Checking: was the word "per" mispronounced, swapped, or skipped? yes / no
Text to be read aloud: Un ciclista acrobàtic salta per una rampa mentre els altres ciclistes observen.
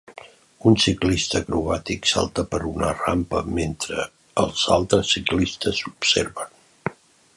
no